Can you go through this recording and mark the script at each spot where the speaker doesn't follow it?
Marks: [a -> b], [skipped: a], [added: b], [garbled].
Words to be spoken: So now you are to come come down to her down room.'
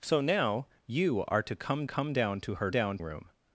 So now you are to come come down to her down room.'